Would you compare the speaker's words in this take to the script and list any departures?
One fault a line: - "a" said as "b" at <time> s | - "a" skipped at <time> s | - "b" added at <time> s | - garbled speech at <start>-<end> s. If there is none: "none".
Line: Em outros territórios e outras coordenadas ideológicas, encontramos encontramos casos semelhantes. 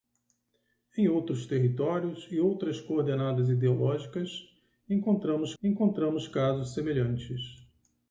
none